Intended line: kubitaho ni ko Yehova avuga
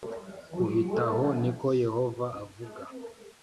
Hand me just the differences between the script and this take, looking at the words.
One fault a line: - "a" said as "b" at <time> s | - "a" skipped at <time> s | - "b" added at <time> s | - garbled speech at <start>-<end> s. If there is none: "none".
none